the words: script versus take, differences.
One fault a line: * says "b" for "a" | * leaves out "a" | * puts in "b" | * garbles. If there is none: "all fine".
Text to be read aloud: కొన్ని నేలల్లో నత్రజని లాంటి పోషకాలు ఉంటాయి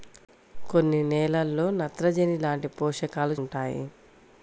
all fine